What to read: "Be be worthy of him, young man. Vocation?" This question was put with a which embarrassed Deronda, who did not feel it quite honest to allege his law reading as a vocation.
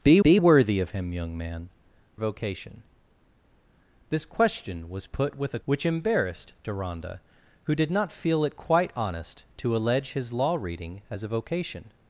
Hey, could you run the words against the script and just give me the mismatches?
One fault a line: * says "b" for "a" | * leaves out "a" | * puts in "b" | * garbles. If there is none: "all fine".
all fine